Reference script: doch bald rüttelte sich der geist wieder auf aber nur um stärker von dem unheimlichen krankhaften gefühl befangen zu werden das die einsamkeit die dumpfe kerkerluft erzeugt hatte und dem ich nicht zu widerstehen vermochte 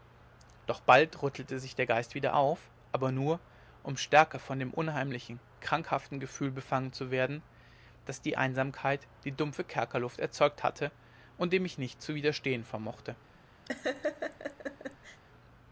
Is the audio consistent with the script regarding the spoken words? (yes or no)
yes